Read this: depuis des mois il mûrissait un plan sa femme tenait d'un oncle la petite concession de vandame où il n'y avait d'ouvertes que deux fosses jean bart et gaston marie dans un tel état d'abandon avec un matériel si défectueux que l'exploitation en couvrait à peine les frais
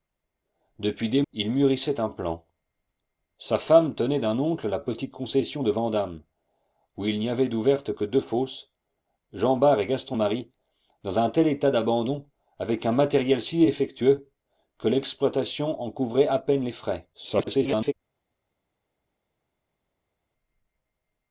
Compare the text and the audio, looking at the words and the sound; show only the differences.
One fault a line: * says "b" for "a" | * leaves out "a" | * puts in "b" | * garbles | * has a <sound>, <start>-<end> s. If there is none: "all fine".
* leaves out "mois"
* garbles